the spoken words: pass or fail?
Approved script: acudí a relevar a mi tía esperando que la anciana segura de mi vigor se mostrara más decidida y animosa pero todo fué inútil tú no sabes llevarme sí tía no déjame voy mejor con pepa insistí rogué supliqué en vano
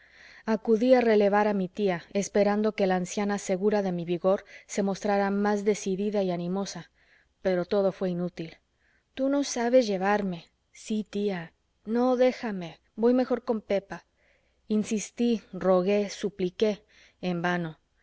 pass